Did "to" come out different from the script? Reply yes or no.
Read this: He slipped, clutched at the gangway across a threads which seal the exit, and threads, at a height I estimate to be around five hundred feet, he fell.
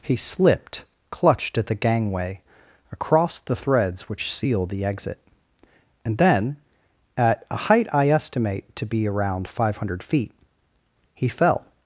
no